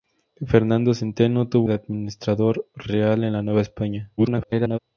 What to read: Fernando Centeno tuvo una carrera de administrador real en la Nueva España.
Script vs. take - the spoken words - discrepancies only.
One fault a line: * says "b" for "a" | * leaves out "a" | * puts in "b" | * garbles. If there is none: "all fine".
* leaves out "una carrera"
* garbles